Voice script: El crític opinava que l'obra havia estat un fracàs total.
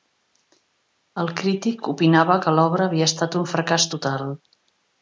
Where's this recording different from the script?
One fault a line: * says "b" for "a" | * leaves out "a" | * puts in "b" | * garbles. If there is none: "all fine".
all fine